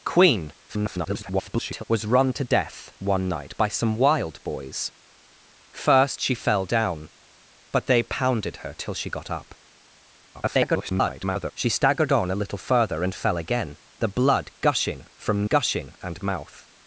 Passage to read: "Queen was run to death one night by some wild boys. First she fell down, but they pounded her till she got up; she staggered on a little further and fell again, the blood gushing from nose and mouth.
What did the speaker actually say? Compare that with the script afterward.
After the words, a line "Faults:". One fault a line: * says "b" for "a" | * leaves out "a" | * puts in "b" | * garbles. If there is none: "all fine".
"Queen [garbled] was run to death one night by some wild boys. First she fell down, but they pounded her till she got up; [garbled] she staggered on a little further and fell again, the blood gushing from gushing and mouth.
Faults:
* garbles
* garbles
* says "gushing" for "nose"